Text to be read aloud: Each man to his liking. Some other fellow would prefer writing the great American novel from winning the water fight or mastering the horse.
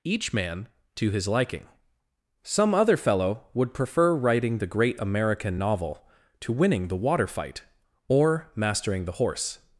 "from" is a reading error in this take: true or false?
true